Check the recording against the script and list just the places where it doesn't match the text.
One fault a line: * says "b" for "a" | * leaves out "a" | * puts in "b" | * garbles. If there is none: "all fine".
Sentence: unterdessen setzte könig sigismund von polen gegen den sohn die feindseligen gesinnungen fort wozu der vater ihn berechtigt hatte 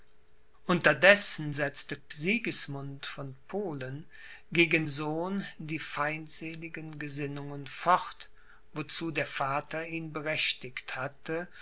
* leaves out "könig"
* leaves out "den"